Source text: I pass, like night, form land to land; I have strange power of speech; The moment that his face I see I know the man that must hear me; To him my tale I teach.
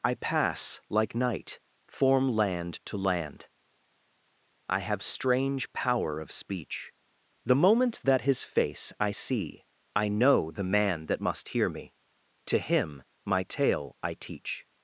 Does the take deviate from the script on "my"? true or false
false